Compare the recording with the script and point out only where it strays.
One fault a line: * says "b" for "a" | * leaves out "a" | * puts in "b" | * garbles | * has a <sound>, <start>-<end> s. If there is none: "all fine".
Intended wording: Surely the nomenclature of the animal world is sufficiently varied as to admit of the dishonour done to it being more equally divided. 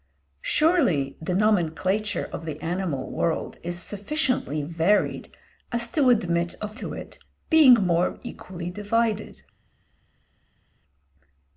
* leaves out "the dishonour done"